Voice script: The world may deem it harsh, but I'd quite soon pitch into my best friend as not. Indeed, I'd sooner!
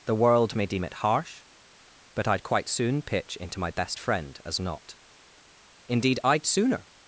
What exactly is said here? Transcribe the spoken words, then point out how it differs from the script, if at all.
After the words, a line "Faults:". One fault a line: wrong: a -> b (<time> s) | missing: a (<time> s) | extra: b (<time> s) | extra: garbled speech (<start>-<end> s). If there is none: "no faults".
The world may deem it harsh, but I'd quite soon pitch into my best friend as not. Indeed, I'd sooner!
Faults:
no faults